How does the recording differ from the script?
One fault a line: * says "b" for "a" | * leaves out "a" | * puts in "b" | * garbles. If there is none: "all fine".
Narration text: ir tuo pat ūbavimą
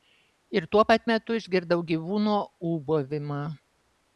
* puts in "metu išgirdau gyvūno"